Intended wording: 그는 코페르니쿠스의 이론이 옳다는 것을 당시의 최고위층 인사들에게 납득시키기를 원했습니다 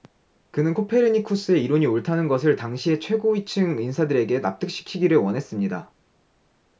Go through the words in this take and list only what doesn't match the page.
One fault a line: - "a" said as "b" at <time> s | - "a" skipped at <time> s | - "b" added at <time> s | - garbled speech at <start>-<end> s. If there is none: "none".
none